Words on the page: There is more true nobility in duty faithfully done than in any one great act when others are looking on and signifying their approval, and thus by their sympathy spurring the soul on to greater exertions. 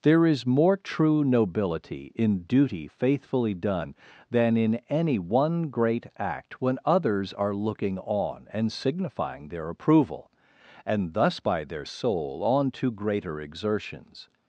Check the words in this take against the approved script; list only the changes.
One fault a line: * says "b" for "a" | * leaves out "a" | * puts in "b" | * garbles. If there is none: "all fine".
* leaves out "sympathy spurring the"